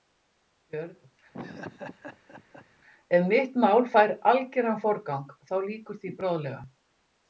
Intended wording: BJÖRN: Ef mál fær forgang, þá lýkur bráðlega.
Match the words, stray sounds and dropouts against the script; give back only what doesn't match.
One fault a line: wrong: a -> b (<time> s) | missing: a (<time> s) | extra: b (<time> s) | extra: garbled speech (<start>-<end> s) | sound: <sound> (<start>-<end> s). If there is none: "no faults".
sound: laugh (1.3-2.7 s)
extra: mitt (3.3 s)
extra: algeran (4.3 s)
extra: því (6.0 s)